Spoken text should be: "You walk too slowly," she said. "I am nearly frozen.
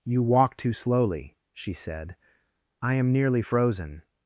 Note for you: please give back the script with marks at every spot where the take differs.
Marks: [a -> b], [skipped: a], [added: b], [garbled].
"You walk too slowly," she said. "I am nearly frozen.